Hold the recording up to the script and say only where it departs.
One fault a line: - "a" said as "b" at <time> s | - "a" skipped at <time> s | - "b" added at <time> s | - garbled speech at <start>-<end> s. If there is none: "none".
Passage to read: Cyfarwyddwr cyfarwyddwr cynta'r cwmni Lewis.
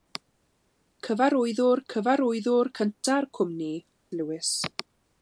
none